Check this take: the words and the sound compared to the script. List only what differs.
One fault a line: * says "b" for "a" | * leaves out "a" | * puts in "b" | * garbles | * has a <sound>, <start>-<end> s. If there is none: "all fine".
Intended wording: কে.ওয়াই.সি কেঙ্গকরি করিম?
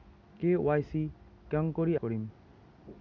all fine